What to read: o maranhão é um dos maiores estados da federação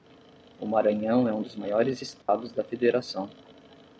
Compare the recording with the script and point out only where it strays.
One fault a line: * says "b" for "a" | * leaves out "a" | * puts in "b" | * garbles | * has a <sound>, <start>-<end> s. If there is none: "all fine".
* has a dropout, 2.2-2.3 s